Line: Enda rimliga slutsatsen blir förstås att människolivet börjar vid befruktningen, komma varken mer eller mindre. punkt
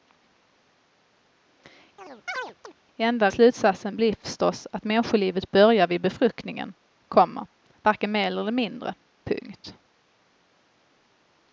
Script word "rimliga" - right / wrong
wrong